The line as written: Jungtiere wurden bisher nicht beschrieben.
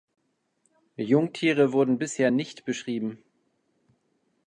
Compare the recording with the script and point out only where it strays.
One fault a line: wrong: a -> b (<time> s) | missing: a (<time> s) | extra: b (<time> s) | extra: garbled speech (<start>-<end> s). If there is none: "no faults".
no faults